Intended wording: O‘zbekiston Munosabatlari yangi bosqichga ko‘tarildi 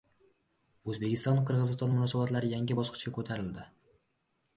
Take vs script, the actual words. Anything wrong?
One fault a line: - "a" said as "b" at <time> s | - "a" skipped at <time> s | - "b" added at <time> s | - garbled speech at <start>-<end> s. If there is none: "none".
- "Qirg‘iziston" added at 1.5 s